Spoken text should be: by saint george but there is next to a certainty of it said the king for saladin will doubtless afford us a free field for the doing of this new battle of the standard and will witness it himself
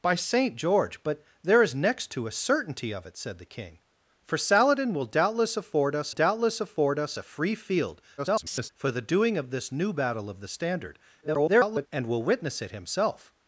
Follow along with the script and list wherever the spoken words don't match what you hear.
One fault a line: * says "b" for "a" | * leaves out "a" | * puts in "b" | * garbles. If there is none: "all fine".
* puts in "doubtless afford us"
* garbles
* garbles